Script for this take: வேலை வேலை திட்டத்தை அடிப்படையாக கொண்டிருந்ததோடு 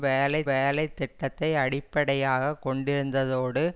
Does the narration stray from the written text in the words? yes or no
no